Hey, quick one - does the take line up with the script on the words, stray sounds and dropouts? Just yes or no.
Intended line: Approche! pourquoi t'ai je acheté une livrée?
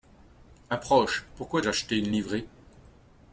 no